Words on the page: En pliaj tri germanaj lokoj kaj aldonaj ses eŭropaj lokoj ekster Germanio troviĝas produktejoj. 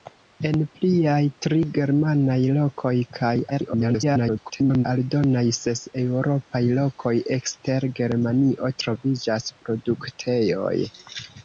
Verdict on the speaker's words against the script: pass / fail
fail